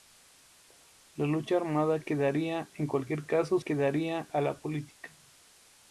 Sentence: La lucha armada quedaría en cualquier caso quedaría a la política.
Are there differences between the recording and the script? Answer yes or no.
no